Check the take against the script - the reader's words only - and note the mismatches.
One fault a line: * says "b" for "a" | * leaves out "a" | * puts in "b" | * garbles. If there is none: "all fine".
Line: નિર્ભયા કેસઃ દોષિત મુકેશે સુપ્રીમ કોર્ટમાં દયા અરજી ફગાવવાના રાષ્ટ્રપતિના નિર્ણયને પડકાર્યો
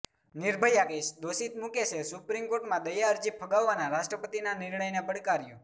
all fine